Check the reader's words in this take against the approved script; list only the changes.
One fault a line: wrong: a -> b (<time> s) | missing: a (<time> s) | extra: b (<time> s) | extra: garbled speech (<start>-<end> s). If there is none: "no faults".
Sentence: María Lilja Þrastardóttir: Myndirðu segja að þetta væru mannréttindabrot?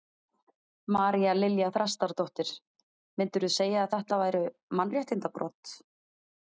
no faults